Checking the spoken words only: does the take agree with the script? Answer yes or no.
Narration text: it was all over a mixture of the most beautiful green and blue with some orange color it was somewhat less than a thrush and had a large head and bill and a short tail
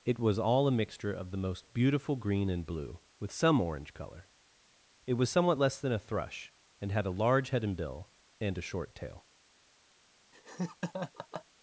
no